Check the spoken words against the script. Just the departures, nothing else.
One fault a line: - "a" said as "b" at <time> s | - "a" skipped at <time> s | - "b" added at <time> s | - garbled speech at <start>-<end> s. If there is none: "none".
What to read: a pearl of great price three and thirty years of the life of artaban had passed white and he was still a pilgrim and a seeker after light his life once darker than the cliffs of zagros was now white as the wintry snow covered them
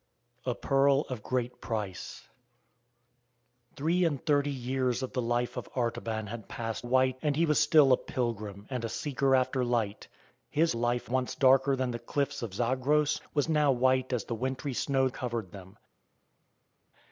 none